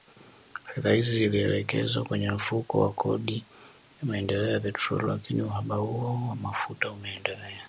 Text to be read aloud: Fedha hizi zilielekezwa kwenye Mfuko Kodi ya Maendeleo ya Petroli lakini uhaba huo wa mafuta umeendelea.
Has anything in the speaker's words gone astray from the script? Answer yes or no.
yes